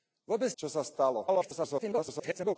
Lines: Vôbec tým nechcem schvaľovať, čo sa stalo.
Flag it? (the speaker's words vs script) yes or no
yes